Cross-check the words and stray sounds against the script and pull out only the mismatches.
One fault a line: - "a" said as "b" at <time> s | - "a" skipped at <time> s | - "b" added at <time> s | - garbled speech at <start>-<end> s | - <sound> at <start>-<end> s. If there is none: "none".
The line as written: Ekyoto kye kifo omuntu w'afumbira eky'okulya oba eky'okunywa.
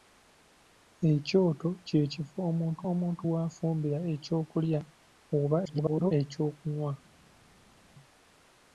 - "omuntu" added at 2.9 s
- garbled speech at 5.6-6.1 s